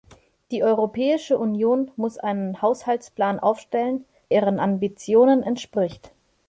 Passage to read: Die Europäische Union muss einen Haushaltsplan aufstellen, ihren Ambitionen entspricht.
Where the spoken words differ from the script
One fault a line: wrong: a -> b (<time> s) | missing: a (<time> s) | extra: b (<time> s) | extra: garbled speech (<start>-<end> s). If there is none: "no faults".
no faults